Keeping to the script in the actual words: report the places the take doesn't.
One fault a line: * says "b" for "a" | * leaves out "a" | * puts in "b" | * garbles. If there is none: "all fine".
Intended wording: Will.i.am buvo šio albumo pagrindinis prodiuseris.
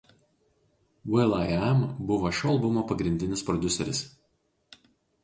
all fine